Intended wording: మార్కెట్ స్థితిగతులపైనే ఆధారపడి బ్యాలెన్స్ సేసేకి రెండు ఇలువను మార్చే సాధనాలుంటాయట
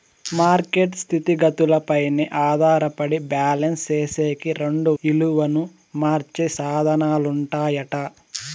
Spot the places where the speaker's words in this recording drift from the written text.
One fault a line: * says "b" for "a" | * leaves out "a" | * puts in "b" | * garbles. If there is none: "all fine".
all fine